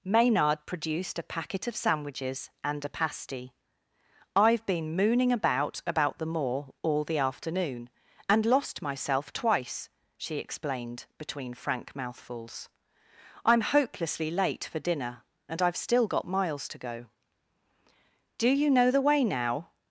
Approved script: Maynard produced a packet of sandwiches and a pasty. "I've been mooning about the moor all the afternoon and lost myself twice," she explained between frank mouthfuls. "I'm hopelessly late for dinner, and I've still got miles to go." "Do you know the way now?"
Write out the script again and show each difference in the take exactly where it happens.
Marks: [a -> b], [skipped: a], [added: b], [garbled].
Maynard produced a packet of sandwiches and a pasty. "I've been mooning about [added: about] the moor all the afternoon and lost myself twice," she explained between frank mouthfuls. "I'm hopelessly late for dinner, and I've still got miles to go." "Do you know the way now?"